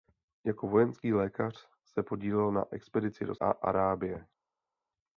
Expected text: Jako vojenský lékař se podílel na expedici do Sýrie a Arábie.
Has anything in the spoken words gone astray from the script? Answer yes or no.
yes